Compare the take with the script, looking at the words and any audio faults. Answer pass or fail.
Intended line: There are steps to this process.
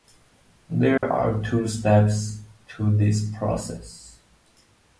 fail